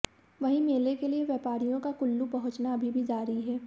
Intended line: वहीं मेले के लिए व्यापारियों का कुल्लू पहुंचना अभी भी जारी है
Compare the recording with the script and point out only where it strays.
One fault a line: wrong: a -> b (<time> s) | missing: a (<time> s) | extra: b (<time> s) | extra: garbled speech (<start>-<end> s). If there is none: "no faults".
no faults